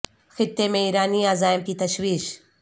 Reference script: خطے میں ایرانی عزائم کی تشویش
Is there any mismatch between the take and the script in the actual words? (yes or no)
no